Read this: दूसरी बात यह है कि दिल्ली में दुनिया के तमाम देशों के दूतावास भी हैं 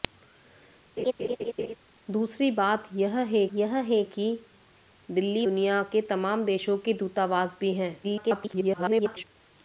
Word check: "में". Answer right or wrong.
wrong